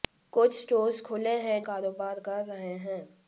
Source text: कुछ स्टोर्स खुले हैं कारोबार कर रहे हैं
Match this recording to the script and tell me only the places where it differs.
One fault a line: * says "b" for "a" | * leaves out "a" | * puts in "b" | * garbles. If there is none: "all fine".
all fine